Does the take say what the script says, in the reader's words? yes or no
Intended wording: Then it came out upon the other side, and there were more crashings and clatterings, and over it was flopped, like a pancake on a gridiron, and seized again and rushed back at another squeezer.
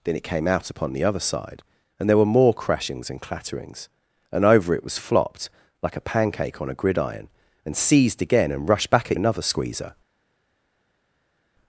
yes